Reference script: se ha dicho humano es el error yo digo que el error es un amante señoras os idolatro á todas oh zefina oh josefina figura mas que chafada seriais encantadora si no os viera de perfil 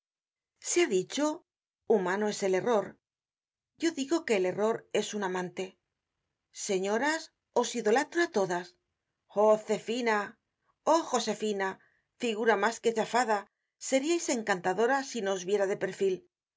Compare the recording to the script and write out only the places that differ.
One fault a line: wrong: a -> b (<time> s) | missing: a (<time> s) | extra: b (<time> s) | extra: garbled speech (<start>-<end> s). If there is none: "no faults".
no faults